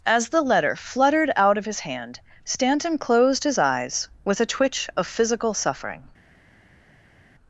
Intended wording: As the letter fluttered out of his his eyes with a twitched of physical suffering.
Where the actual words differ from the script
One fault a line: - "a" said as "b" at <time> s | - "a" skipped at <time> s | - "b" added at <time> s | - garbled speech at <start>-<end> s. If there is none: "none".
- "hand Stanton closed" added at 1.8 s
- "twitched" said as "twitch" at 4.5 s